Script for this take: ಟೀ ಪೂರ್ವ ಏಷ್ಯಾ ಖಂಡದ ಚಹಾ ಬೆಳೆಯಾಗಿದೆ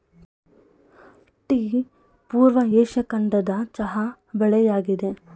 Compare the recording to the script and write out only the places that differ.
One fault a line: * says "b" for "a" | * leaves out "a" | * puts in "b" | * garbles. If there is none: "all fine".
all fine